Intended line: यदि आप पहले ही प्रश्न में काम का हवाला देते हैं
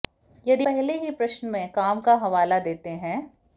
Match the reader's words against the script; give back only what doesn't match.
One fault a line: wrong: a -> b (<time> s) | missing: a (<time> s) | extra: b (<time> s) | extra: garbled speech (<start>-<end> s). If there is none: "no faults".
missing: आप (0.7 s)